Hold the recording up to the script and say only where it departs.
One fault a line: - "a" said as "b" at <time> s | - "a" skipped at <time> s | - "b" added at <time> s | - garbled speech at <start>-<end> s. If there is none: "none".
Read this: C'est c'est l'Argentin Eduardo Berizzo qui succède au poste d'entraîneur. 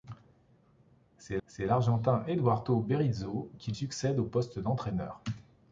none